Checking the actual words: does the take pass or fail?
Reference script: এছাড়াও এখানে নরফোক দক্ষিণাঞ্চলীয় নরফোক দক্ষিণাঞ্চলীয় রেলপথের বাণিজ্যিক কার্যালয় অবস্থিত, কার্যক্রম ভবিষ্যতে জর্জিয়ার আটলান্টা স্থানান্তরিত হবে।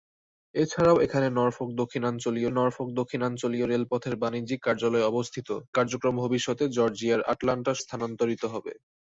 pass